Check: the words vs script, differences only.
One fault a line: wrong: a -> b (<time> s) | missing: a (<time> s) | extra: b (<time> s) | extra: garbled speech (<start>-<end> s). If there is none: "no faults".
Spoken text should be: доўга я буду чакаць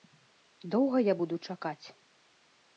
no faults